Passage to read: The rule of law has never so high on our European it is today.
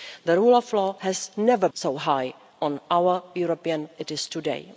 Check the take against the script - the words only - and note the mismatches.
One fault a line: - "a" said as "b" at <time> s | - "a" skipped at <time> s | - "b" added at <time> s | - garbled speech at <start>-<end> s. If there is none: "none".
none